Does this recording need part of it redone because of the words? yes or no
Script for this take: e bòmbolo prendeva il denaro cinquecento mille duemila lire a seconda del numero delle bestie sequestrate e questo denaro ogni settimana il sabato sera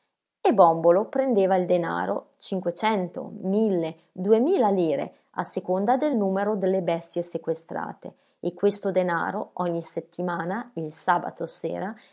no